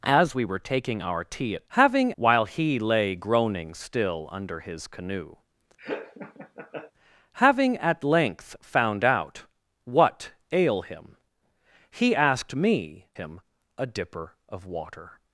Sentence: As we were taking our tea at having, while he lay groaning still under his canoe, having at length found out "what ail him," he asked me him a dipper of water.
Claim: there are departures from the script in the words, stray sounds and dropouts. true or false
true